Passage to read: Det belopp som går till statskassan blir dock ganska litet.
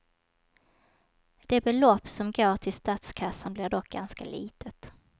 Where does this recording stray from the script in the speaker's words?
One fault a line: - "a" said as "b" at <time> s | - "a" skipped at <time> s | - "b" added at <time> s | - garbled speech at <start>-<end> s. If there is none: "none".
none